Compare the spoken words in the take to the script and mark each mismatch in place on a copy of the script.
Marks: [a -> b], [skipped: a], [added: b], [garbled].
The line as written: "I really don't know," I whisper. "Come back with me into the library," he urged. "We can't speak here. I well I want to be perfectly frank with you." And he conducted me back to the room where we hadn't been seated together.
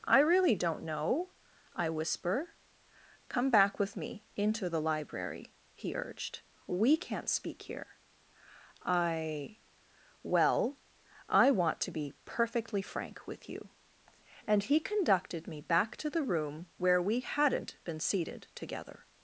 "I really don't know," I whisper. "Come back with me into the library," he urged. "We can't speak here. I well I want to be perfectly frank with you." And he conducted me back to the room where we hadn't been seated together.